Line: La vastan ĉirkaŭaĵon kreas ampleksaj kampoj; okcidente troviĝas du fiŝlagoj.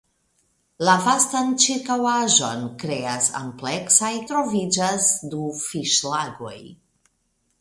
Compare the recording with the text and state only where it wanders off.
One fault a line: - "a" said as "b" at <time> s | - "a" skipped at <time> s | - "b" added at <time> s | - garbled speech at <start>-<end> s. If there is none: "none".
- "kampoj okcidente" skipped at 4.1 s